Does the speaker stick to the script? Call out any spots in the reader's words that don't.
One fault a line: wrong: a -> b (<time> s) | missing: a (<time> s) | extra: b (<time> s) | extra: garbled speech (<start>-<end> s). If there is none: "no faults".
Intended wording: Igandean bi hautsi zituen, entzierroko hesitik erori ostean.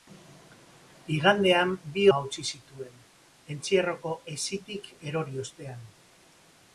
no faults